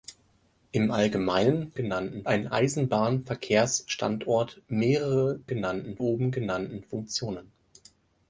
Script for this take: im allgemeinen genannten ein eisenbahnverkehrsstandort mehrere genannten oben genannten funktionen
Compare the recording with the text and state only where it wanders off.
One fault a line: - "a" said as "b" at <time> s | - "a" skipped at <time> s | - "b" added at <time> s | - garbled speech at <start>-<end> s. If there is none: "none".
none